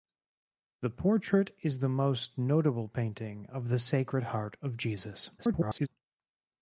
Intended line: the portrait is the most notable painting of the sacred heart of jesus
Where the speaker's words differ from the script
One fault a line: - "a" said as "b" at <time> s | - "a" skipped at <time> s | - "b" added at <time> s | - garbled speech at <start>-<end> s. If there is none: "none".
- garbled speech at 5.4-5.9 s